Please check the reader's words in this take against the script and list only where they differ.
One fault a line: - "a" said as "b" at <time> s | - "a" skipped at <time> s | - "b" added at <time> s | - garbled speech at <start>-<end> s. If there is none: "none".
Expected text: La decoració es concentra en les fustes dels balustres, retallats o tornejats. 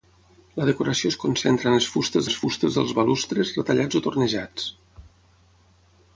- "les fustes" added at 2.2 s